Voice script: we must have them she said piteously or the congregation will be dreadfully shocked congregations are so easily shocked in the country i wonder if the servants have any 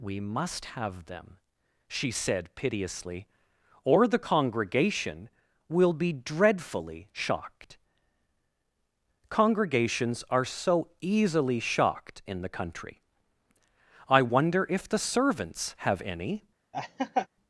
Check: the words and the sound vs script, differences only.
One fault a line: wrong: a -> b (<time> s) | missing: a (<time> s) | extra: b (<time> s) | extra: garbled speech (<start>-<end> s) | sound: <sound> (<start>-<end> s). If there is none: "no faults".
sound: laugh (16.7-17.3 s)